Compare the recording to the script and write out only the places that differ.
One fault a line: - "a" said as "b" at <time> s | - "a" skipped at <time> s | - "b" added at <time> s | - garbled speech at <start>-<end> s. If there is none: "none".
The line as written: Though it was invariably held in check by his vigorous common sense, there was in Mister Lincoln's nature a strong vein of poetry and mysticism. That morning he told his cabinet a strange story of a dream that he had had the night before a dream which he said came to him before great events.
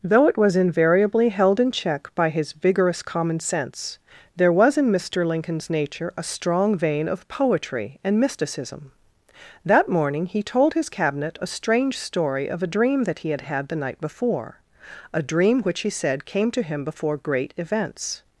none